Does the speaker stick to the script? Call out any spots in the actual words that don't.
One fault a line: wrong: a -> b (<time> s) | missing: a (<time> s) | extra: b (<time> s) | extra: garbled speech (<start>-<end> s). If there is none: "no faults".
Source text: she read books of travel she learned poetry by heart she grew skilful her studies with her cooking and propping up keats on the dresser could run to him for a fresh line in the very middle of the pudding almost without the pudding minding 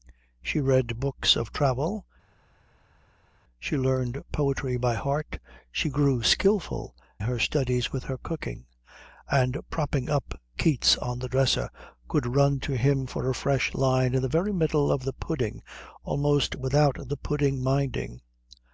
no faults